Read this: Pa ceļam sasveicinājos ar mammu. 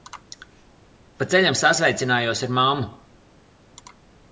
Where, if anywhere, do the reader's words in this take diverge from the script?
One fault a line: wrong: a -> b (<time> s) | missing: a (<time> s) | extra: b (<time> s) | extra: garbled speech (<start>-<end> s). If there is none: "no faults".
no faults